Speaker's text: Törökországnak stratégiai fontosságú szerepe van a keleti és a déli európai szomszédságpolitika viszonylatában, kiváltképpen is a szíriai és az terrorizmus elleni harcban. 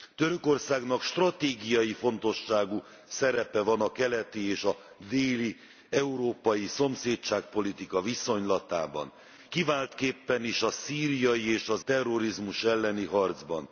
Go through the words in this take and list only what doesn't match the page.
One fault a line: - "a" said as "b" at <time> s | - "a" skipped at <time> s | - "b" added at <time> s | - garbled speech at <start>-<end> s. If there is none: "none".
none